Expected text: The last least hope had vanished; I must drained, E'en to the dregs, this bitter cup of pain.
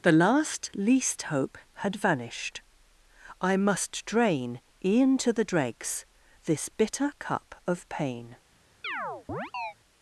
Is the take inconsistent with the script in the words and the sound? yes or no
yes